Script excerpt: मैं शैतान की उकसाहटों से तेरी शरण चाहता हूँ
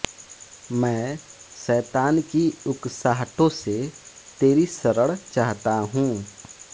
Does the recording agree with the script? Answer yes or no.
yes